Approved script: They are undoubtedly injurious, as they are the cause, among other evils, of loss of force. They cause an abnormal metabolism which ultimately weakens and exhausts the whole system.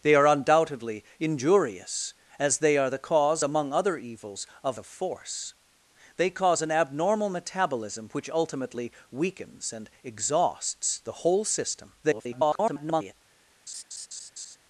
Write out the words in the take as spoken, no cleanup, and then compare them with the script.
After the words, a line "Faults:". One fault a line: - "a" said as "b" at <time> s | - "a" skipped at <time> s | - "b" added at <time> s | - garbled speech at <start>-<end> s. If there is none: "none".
They are undoubtedly injurious, as they are the cause, among other evils, of of force. They cause an abnormal metabolism which ultimately weakens and exhausts the whole system. [garbled]
Faults:
- "loss" skipped at 4.8 s
- garbled speech at 12.0-13.1 s